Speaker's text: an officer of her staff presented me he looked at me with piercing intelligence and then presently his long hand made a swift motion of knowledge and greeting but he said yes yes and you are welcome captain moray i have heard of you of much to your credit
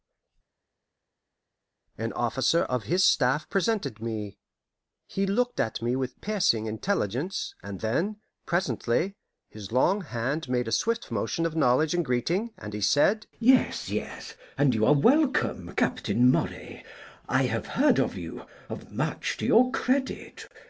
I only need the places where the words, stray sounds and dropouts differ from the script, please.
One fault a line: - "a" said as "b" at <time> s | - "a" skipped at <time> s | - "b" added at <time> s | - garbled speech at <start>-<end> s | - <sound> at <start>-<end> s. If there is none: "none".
- "her" said as "his" at 2.8 s
- "but" said as "and" at 12.6 s